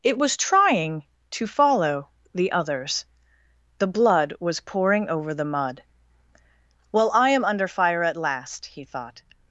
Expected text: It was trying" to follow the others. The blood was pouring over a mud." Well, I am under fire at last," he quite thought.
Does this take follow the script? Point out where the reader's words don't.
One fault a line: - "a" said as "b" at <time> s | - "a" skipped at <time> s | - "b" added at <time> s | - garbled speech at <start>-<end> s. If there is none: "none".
- "a" said as "the" at 5.3 s
- "quite" skipped at 8.8 s